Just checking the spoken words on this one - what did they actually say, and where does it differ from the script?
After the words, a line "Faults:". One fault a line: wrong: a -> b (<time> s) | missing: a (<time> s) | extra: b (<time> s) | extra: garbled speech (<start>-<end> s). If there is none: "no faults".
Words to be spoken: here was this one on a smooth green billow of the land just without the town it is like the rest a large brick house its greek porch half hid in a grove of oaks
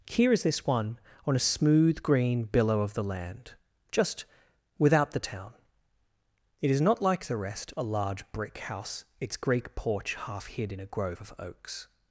here is this one on a smooth green billow of the land just without the town it is not like the rest a large brick house its greek porch half hid in a grove of oaks
Faults:
wrong: was -> is (0.3 s)
extra: not (6.8 s)